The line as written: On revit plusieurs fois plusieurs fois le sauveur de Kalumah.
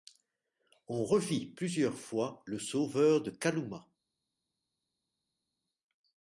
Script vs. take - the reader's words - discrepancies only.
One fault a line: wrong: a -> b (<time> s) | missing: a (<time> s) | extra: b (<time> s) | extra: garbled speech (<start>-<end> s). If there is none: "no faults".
missing: plusieurs fois (2.4 s)